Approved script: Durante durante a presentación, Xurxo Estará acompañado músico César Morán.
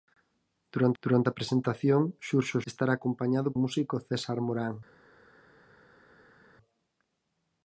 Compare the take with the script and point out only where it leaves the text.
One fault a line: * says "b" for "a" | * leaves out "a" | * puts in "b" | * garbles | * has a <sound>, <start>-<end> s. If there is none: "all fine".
all fine